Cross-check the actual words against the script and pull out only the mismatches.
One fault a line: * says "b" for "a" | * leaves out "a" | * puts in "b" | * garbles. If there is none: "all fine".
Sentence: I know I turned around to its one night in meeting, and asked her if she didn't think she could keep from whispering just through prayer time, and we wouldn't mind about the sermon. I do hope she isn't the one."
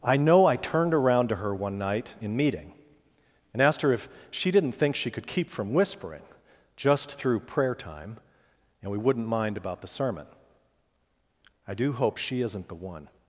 * says "her" for "its"